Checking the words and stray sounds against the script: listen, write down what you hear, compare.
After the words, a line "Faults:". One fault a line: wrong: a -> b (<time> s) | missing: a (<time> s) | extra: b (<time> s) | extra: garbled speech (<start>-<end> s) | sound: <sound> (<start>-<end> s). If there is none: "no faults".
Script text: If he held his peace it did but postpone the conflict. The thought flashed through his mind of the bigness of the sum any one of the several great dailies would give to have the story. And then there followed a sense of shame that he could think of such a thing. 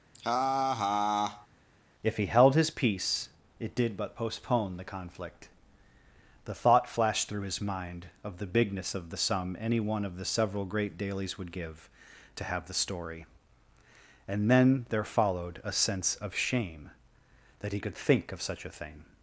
If he held his peace it did but postpone the conflict. The thought flashed through his mind of the bigness of the sum any one of the several great dailies would give to have the story. And then there followed a sense of shame that he could think of such a thing.
Faults:
sound: laugh (0.1-1.5 s)